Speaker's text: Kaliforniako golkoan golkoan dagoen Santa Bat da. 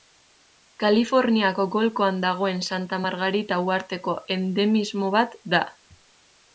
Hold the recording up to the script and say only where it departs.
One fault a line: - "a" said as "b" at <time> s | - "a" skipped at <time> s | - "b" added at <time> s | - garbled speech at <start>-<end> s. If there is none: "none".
- "golkoan" skipped at 2.2 s
- "Margarita uharteko endemismo" added at 3.0 s